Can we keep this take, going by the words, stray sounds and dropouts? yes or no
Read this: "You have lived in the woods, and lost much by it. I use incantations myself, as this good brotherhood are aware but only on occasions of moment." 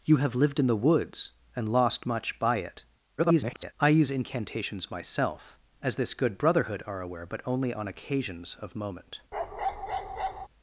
no